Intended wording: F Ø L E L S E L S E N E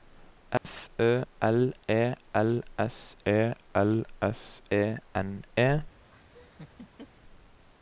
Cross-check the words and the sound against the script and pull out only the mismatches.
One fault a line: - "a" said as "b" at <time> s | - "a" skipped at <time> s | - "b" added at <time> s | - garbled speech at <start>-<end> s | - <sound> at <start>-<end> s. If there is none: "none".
- dropout at 0.6-0.6 s
- laugh at 6.1-7.1 s